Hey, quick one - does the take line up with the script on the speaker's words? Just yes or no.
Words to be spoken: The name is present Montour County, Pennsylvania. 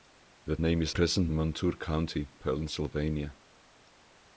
yes